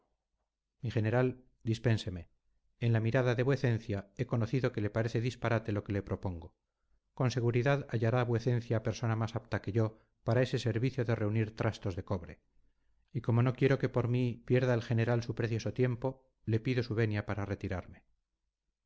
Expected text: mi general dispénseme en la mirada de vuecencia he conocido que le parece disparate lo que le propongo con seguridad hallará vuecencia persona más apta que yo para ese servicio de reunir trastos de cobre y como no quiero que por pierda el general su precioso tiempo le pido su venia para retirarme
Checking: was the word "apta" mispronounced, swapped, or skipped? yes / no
no